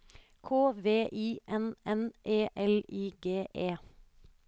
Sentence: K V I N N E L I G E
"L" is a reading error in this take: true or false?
false